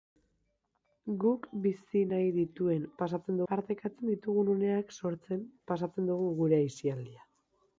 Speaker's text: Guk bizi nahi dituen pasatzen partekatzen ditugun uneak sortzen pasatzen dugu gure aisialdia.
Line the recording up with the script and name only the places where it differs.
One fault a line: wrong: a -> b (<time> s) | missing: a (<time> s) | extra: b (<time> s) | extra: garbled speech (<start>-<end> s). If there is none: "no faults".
no faults